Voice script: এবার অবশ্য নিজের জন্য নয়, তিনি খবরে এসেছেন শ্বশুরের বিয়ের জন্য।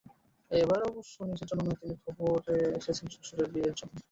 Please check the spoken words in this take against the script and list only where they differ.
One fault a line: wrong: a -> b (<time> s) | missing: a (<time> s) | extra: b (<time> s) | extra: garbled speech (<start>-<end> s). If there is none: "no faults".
no faults